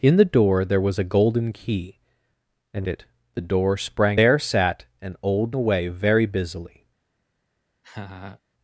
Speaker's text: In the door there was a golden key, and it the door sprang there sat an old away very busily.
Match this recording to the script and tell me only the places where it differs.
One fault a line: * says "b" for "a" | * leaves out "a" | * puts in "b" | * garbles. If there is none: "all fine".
all fine